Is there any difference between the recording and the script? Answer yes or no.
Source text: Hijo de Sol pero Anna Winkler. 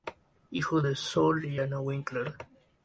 yes